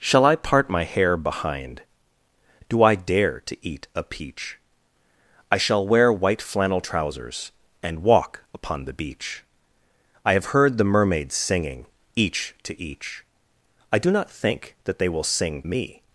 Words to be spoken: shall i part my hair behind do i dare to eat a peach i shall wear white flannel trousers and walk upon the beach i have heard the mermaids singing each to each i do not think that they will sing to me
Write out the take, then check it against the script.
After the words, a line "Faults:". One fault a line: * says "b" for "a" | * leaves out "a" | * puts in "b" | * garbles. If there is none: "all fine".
shall i part my hair behind do i dare to eat a peach i shall wear white flannel trousers and walk upon the beach i have heard the mermaids singing each to each i do not think that they will sing me
Faults:
* leaves out "to"